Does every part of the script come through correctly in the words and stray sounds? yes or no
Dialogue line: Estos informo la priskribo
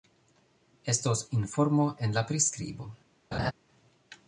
no